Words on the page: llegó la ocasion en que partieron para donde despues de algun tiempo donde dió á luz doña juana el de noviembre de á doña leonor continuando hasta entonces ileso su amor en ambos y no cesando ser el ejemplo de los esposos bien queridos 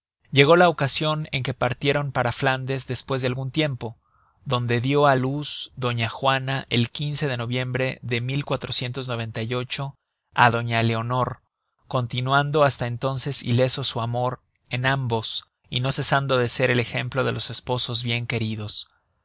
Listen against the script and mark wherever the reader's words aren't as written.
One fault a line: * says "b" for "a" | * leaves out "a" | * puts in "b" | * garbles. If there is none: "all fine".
* says "flandes" for "donde"
* puts in "de"